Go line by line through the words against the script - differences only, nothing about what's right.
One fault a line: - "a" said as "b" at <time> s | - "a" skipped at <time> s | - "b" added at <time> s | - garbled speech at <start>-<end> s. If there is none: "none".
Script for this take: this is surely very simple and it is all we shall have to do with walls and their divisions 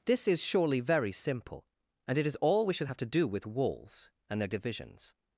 - "shall" said as "should" at 2.7 s